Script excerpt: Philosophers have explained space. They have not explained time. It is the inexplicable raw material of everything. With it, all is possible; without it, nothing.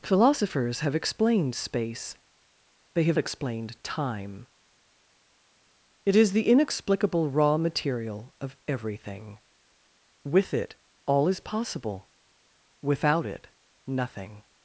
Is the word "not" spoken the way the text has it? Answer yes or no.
no